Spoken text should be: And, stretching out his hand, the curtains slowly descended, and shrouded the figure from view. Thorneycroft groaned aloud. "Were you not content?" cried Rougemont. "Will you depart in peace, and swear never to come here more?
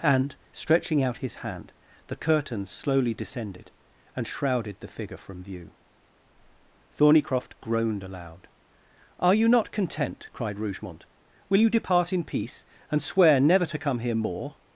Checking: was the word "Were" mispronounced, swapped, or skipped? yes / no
yes